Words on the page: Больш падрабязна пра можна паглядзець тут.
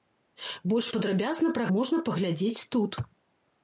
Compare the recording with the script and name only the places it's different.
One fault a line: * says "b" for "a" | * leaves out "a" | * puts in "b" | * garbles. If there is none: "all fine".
all fine